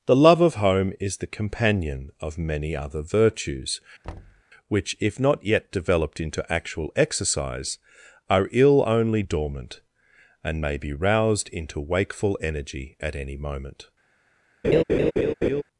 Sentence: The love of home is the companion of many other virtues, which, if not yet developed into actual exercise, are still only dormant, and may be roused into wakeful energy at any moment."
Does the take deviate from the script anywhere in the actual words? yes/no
yes